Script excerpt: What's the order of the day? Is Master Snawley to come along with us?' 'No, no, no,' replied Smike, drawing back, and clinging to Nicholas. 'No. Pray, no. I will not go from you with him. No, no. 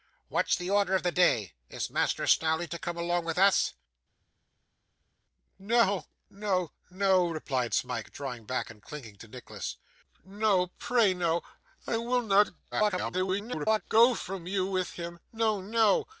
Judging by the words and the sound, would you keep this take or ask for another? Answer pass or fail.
fail